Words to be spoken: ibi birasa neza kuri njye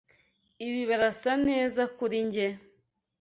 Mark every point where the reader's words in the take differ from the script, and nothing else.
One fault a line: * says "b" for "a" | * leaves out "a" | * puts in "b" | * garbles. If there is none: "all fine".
all fine